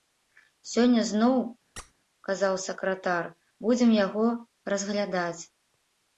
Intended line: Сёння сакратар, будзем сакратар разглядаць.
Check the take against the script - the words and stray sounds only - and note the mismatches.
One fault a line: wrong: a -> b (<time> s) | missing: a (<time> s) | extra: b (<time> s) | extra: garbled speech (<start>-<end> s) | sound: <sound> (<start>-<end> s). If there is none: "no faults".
extra: зноў казаў (1.1 s)
sound: squeak (1.8-1.9 s)
wrong: сакратар -> яго (4.1 s)